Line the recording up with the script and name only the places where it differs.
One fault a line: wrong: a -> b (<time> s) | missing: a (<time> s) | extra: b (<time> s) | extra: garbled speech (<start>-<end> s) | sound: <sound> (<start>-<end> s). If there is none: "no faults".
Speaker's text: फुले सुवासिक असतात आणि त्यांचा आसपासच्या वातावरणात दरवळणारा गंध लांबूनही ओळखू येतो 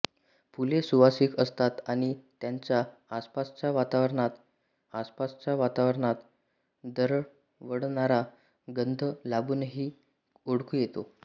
extra: आसपासच्या वातावरणात (4.9 s)